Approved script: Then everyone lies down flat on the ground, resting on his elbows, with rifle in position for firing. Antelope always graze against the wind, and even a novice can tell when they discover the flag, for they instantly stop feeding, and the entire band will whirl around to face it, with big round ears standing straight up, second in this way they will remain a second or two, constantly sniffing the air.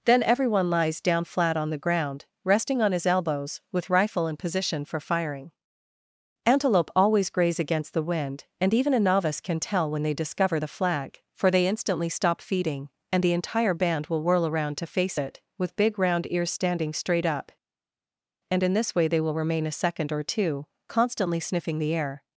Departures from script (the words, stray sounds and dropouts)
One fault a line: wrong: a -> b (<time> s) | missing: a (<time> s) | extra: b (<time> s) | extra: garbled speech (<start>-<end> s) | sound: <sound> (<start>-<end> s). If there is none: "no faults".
wrong: second -> and (18.5 s)